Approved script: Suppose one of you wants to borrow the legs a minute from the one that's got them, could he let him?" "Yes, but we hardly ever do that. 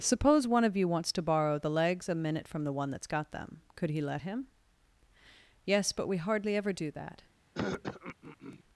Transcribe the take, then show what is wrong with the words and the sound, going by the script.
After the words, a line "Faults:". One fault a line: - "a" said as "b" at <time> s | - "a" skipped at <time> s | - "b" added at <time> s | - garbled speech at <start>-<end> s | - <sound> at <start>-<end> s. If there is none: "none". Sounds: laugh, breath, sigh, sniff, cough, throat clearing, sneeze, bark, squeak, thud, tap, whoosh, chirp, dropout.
Suppose one of you wants to borrow the legs a minute from the one that's got them, could he let him?" "Yes, but we hardly ever do that.
Faults:
- throat clearing at 7.5-8.6 s